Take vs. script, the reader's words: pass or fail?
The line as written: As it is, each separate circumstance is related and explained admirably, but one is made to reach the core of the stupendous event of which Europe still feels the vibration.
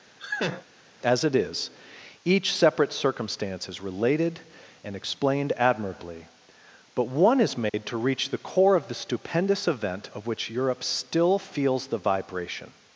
pass